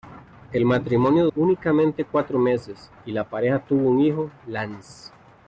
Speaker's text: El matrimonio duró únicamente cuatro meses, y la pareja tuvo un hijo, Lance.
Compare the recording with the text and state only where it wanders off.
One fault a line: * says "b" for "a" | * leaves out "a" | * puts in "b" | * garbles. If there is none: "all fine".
* leaves out "duró"